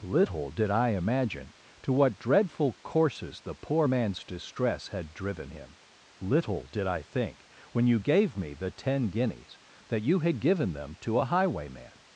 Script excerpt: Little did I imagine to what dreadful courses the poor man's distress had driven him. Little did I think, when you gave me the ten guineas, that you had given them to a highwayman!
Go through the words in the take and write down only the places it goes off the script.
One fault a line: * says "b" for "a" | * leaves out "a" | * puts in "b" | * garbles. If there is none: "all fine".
all fine